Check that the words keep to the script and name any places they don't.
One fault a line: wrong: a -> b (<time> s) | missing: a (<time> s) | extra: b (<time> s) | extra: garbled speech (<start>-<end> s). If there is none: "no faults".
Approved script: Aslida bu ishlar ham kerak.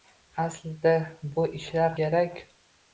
missing: ham (1.9 s)